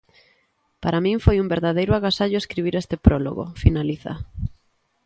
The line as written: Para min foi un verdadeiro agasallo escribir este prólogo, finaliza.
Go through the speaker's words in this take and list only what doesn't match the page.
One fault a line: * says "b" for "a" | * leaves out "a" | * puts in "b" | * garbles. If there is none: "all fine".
all fine